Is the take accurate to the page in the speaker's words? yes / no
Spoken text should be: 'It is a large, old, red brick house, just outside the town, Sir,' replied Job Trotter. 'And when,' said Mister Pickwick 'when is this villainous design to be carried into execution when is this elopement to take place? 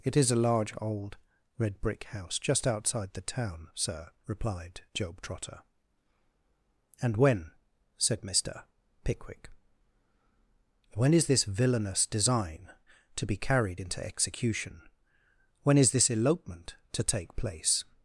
yes